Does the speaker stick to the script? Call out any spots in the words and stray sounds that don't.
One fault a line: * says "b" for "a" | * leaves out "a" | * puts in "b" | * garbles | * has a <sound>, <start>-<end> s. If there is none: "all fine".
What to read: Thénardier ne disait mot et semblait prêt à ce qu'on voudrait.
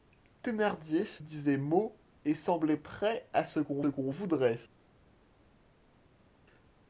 * leaves out "ne"
* puts in "qu'on"